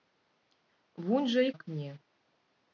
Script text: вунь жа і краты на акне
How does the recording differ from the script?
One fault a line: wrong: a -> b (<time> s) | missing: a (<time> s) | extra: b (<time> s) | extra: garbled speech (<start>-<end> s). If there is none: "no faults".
missing: краты на (1.5 s)